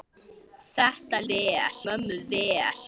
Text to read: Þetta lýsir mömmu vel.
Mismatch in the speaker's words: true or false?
true